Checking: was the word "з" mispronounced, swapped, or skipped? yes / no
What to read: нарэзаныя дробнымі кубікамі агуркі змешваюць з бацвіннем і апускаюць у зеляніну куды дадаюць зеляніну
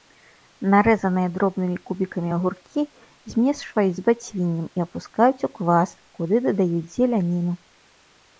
no